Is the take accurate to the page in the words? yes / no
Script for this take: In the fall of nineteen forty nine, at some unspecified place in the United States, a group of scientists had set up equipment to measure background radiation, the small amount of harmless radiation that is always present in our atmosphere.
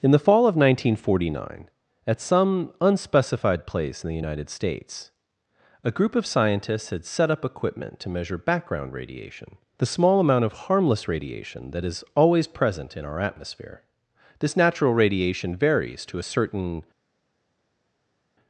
no